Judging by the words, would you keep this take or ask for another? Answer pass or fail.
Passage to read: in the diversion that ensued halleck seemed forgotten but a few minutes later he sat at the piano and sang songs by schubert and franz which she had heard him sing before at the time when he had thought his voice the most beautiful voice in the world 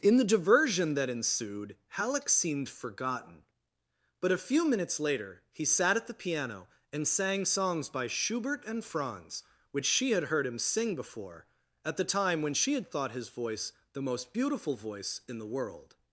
fail